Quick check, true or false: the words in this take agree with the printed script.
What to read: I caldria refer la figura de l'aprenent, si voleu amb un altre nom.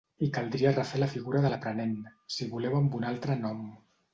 true